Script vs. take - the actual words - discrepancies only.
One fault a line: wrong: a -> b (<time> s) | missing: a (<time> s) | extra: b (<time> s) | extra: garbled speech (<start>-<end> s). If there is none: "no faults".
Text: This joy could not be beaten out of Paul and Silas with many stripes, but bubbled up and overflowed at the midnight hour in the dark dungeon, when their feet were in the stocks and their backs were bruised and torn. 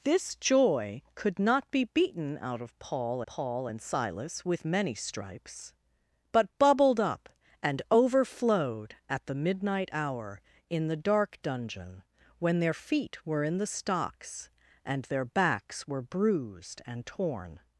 extra: Paul (3.3 s)